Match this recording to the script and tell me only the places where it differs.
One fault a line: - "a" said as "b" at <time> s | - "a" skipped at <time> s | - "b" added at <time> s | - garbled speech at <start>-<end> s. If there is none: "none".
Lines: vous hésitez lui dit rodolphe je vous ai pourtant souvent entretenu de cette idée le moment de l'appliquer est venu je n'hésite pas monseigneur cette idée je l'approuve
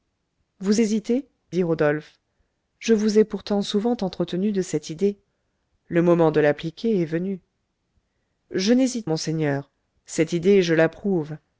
- "lui" skipped at 1.3 s
- "pas" skipped at 9.1 s